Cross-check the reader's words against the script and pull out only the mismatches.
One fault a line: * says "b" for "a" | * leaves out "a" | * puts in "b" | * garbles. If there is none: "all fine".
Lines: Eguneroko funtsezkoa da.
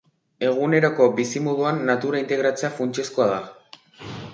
* puts in "bizimoduan natura integratzea"